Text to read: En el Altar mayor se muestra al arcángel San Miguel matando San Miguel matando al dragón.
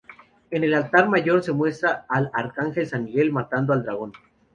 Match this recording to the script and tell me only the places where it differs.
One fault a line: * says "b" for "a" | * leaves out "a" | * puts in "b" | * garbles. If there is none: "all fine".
* leaves out "San Miguel matando"